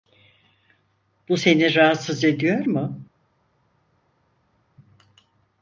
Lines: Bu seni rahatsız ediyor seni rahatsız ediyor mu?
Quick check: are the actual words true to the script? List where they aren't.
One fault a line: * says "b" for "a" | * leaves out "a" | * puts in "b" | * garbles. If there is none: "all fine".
* leaves out "seni rahatsız ediyor"